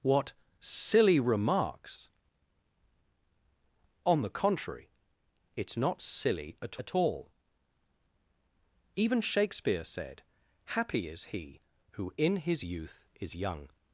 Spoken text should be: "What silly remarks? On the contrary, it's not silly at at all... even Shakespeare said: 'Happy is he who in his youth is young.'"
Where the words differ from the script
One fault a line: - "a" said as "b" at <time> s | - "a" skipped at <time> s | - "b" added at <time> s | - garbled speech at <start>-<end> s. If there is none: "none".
none